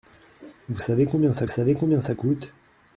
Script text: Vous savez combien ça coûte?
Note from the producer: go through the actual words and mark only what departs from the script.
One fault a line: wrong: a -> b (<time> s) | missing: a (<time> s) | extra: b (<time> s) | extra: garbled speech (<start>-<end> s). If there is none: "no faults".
extra: savez combien ça (1.5 s)